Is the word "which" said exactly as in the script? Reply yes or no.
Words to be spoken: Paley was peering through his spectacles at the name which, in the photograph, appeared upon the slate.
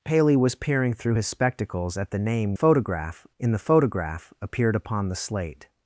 no